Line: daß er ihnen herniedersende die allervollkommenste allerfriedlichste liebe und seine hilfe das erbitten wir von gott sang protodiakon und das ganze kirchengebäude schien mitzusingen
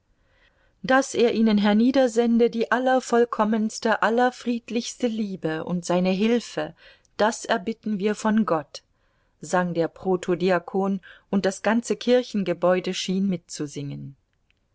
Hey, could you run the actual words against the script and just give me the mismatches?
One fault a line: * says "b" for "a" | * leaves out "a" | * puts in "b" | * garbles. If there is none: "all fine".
* puts in "der"